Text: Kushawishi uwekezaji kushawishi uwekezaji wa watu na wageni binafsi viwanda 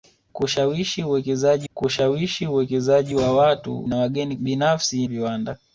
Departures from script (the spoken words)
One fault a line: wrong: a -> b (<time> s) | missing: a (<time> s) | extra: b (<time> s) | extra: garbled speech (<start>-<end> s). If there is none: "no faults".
no faults